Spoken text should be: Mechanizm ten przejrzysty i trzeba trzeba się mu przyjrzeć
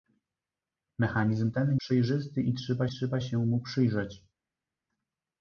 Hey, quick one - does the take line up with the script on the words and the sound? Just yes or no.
yes